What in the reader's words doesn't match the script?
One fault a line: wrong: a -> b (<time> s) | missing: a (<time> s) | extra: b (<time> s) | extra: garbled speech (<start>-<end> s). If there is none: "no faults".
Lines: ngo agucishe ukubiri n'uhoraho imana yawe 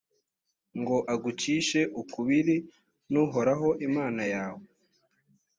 no faults